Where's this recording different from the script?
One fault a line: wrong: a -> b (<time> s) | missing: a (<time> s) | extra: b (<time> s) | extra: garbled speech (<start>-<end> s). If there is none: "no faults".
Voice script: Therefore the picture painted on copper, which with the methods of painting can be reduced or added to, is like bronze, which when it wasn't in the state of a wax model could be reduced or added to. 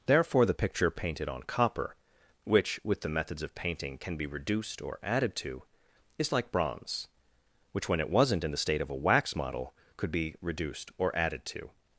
no faults